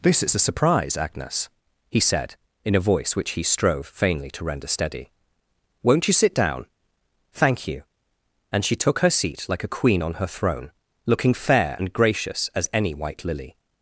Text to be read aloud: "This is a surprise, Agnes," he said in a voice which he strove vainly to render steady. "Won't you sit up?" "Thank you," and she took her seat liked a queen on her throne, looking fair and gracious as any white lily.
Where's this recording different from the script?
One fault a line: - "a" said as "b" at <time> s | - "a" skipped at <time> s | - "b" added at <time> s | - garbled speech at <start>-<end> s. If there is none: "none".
- "up" said as "down" at 6.3 s
- "liked" said as "like" at 9.5 s